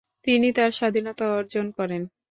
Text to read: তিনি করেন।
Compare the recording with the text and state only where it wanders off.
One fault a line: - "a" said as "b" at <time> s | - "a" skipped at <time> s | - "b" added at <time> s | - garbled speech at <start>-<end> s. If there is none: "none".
- "তার স্বাধীনতা অর্জন" added at 0.6 s